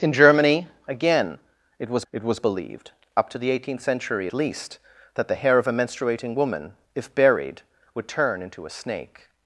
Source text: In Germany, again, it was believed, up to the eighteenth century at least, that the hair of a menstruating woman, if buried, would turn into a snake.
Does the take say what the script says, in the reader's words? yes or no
no